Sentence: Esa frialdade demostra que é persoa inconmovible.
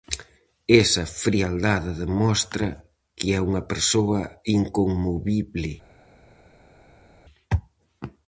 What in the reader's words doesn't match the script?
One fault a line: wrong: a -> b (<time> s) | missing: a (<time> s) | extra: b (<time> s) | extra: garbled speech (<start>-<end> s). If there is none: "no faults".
extra: unha (3.5 s)